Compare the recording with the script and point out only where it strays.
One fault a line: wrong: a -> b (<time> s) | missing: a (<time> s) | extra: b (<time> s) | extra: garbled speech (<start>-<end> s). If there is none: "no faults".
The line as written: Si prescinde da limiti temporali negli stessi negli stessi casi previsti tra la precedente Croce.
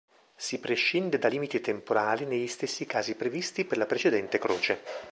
missing: negli stessi (2.8 s)
wrong: tra -> per (3.6 s)